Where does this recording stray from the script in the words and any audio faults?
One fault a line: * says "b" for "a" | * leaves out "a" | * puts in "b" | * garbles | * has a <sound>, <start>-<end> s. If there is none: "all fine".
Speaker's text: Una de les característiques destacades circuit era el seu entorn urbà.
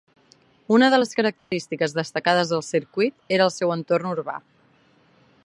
* has a dropout, 1.4-1.5 s
* puts in "del"